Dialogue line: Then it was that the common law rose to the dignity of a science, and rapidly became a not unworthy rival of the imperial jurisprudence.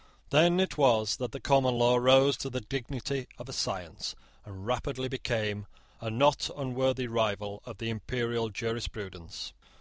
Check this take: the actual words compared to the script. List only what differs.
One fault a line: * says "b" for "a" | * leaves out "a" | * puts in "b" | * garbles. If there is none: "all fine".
all fine